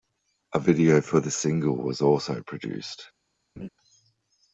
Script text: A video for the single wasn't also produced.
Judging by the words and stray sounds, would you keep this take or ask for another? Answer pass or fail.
fail